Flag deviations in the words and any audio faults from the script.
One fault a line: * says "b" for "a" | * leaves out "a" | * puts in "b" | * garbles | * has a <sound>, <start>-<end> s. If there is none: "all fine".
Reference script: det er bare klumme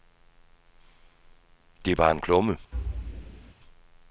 * puts in "en"
* has a thud, 2.7-3.5 s